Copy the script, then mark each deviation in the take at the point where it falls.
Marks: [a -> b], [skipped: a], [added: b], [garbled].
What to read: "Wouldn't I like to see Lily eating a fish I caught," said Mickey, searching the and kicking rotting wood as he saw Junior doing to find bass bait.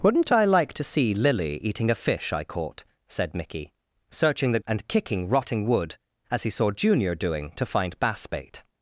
"Wouldn't I like to see Lily eating a fish I caught," said Mickey, searching the and kicking rotting wood as he saw Junior doing to find bass bait.